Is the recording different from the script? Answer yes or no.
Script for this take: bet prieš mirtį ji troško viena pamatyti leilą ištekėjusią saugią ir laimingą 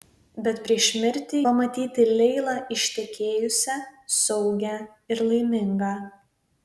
yes